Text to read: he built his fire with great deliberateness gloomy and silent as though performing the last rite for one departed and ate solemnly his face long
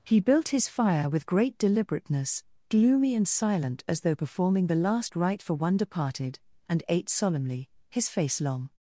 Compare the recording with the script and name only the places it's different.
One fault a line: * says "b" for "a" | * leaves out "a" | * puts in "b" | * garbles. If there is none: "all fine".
all fine